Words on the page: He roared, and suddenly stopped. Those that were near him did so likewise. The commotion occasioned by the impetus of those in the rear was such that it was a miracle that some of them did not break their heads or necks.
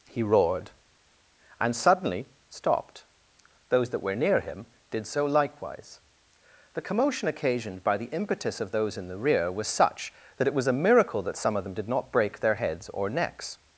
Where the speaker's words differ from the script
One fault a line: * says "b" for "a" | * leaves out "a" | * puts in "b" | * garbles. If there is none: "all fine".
all fine